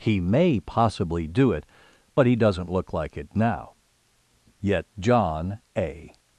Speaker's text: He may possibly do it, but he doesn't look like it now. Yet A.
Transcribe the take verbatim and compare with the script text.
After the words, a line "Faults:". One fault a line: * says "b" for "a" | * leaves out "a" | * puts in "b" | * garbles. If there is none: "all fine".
He may possibly do it, but he doesn't look like it now. Yet John A.
Faults:
* puts in "John"